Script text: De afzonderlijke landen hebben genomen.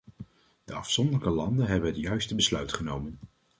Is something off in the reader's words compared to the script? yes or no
yes